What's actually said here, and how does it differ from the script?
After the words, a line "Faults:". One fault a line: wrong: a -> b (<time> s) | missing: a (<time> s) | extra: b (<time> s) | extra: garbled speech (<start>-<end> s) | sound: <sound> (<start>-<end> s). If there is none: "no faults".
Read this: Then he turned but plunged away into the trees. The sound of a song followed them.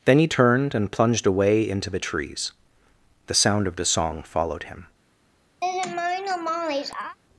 Then he turned and plunged away into the trees. The sound of the song followed him.
Faults:
wrong: but -> and (0.7 s)
wrong: a -> the (3.7 s)
wrong: them -> him (4.6 s)
sound: laugh (5.6-7.2 s)